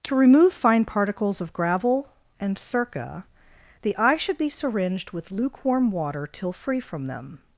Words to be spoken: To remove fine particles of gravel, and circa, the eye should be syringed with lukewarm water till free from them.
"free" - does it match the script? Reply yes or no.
yes